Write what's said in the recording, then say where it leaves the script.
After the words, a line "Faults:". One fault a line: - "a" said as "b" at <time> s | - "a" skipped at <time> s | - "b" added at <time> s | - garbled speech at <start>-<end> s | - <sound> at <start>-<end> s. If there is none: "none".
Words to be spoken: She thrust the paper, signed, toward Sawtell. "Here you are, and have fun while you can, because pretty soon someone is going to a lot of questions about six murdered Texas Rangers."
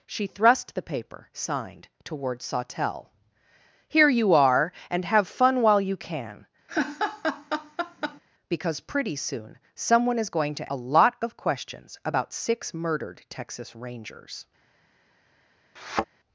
She thrust the paper, signed, toward Sawtell. "Here you are, and have fun while you can, because pretty soon someone is going to a lot of questions about six murdered Texas Rangers."
Faults:
- laugh at 6.7-8.2 s
- thud at 15.8-16.1 s